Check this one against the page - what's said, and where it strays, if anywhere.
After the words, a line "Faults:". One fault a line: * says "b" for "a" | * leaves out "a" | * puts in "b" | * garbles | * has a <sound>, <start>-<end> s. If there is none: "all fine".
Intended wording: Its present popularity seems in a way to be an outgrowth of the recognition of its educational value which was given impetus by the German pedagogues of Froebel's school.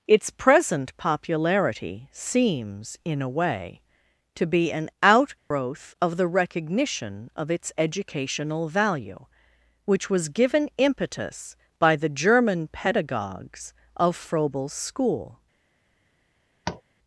Its present popularity seems in a way to be an outgrowth of the recognition of its educational value which was given impetus by the German pedagogues of Froebel's school.
Faults:
* has a dropout, 5.4-5.5 s
* has a tap, 16.6-16.8 s